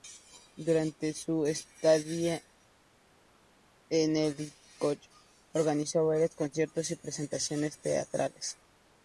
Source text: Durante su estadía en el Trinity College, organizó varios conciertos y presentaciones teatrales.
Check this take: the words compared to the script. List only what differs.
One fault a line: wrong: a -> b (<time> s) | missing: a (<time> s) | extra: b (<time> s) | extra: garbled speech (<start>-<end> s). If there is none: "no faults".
missing: Trinity (4.5 s)